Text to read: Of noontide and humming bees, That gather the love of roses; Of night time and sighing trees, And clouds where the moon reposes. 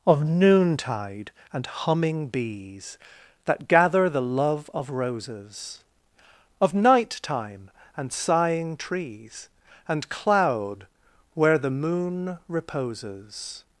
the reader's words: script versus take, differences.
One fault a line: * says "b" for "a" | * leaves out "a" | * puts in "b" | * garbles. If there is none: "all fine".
* says "cloud" for "clouds"